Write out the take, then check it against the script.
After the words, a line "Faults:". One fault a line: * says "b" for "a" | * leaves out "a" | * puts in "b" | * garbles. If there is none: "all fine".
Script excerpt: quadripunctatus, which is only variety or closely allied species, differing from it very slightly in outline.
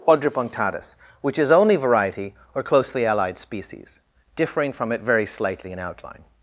quadripunctatus, which is only variety or closely allied species, differing from it very slightly in outline.
Faults:
all fine